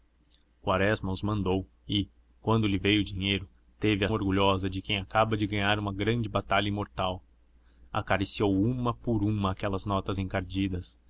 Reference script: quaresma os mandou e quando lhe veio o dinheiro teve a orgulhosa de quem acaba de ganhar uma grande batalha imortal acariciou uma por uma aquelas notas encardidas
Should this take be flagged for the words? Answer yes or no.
no